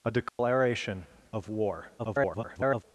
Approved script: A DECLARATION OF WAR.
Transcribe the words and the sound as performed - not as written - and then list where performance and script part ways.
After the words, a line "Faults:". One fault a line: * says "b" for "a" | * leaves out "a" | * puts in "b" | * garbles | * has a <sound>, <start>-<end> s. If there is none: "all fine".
A DECLARATION OF WAR. [garbled]
Faults:
* has a dropout, 0.3-0.4 s
* garbles